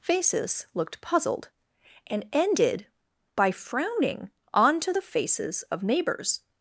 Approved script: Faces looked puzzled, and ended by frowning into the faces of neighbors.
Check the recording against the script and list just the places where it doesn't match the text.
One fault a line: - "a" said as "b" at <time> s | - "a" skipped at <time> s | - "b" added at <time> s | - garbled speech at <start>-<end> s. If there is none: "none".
- "into" said as "onto" at 4.5 s